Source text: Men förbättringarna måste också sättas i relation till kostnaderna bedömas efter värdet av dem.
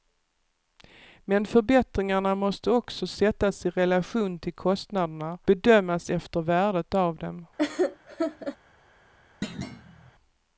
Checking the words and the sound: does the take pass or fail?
fail